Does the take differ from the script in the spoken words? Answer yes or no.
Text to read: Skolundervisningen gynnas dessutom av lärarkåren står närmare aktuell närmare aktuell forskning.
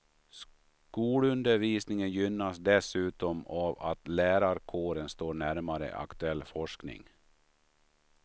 yes